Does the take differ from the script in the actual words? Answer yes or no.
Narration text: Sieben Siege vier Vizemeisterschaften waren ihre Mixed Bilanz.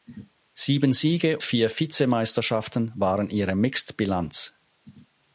no